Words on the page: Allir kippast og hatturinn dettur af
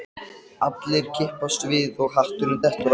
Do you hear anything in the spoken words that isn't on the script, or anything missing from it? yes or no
yes